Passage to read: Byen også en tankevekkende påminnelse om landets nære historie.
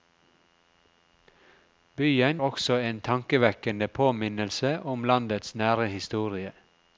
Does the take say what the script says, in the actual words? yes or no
yes